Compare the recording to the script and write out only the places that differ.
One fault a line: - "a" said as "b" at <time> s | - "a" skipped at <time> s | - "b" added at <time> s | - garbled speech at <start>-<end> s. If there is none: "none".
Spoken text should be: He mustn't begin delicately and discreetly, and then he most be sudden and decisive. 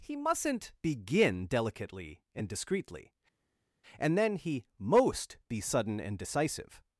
none